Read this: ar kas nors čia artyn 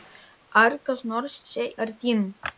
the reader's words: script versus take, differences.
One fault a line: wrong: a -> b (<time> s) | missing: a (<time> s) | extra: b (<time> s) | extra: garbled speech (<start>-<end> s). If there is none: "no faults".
no faults